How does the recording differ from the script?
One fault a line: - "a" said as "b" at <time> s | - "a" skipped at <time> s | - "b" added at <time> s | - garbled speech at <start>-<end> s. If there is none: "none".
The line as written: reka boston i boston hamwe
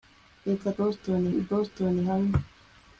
none